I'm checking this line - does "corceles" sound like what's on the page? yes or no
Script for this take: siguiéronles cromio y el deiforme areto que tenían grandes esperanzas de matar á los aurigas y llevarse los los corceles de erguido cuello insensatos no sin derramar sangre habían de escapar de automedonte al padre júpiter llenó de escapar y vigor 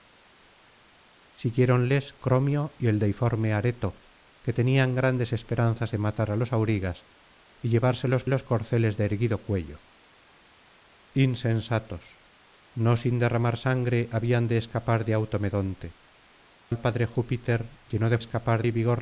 yes